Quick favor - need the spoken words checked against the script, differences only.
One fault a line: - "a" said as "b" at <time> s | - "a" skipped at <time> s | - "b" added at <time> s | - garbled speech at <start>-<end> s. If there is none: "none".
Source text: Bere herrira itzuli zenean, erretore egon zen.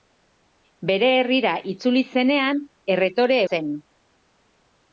- "egon" skipped at 3.4 s